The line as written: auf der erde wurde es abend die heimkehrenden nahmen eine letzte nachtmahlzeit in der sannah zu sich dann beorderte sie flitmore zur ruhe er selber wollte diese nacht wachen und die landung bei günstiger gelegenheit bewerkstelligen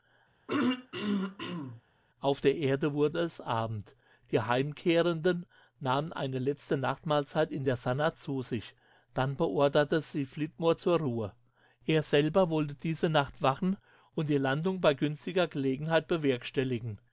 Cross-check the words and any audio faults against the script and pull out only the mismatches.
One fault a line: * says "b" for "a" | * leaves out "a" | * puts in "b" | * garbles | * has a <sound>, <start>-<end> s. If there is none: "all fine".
* has a throat clearing, 0.5-1.8 s